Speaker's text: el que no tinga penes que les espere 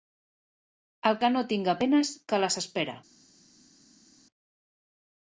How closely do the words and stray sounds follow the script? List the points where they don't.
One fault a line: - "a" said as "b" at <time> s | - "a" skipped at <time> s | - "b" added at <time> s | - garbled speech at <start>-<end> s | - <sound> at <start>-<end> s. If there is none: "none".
none